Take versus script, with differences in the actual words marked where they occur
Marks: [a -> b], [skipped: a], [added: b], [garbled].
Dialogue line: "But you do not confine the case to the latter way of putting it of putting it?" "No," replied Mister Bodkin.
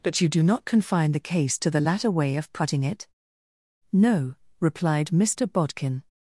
"But you do not confine the case to the latter way of putting it [skipped: of putting it?"] "No," replied Mister Bodkin.